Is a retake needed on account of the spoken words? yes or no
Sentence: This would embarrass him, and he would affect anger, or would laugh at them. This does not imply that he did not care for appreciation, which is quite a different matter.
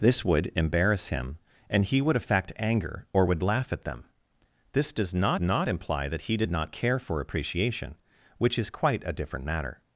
yes